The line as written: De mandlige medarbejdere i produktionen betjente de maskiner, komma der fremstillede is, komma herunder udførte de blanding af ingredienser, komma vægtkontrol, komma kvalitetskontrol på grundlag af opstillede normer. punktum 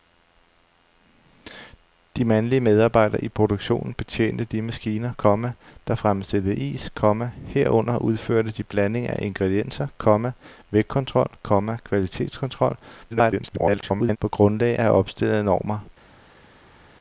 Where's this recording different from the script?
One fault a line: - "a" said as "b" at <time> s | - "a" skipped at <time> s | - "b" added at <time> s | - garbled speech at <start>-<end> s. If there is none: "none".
- garbled speech at 13.1-14.2 s